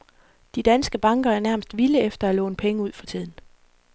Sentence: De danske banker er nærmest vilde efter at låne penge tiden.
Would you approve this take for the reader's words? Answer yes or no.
no